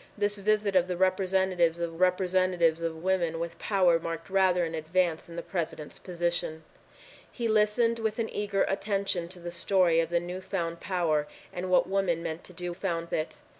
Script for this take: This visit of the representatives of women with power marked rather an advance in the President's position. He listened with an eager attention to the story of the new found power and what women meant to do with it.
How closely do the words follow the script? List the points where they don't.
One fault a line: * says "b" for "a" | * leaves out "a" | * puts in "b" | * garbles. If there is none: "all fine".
* puts in "representatives of"
* says "found" for "with"